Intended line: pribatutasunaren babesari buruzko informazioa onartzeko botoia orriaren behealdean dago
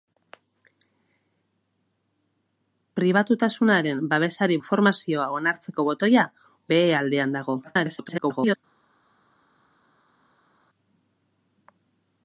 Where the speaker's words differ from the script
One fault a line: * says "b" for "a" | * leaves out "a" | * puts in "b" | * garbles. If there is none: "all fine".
* leaves out "buruzko"
* leaves out "orriaren"
* garbles